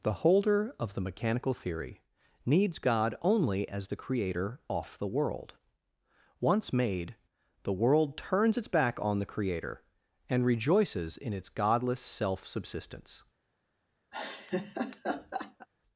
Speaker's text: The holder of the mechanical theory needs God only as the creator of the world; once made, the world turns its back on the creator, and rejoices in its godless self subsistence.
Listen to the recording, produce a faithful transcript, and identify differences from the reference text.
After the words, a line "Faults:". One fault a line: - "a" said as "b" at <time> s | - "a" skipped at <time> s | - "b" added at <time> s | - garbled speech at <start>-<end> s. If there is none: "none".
The holder of the mechanical theory needs God only as the creator off the world; once made, the world turns its back on the creator, and rejoices in its godless self subsistence.
Faults:
- "of" said as "off" at 4.7 s